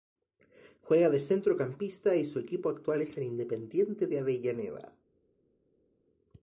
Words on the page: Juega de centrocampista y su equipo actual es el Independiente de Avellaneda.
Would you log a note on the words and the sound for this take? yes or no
no